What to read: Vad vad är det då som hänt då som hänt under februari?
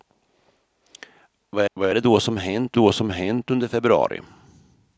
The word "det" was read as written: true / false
true